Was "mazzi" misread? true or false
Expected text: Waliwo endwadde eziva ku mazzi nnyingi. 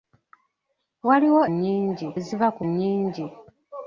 true